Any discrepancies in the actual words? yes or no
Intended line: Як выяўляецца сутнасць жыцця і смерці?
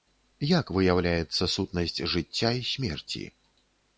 no